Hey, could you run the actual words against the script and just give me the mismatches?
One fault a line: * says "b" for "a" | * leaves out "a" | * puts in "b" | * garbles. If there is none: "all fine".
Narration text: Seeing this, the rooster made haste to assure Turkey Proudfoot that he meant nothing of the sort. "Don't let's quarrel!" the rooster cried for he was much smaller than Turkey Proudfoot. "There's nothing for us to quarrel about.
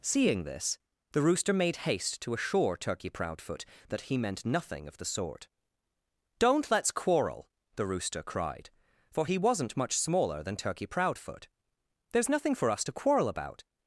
* says "wasn't" for "was"